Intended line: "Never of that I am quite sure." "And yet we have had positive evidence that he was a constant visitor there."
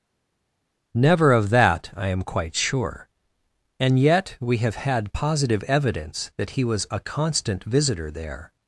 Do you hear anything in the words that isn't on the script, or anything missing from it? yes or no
no